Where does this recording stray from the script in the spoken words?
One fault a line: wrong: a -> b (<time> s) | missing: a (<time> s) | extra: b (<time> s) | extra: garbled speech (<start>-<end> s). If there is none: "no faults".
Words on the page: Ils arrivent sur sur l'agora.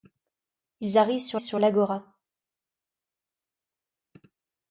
no faults